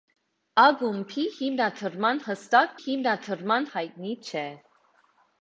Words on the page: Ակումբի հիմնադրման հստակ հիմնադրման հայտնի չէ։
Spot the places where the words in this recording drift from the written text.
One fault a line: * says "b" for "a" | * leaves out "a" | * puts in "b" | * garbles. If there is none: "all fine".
all fine